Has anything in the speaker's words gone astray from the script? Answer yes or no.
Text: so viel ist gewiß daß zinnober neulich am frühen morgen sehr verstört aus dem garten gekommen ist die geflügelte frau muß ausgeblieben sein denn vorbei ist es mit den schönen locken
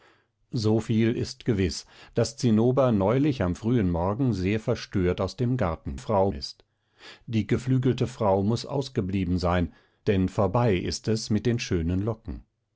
yes